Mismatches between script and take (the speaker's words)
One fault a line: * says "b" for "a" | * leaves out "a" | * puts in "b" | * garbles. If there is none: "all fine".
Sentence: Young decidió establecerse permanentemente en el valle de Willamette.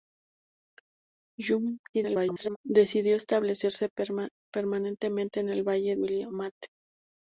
* garbles
* leaves out "de"